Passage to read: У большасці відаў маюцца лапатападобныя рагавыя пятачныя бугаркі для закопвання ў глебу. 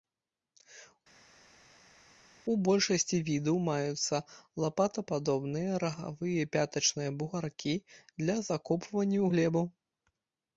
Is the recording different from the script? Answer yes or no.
no